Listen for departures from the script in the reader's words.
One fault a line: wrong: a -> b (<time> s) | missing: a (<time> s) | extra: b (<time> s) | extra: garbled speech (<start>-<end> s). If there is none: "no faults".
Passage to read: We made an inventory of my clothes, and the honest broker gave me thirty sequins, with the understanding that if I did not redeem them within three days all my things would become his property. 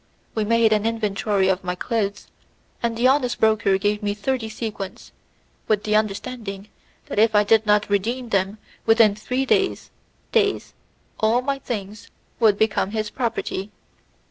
extra: days (10.3 s)